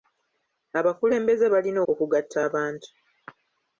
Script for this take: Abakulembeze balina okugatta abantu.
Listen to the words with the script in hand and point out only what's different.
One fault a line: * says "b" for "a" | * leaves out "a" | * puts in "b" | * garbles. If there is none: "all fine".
all fine